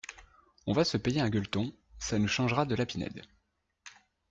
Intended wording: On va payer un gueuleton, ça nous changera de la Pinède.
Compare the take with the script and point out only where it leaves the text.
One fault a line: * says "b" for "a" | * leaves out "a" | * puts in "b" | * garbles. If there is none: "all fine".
* puts in "se"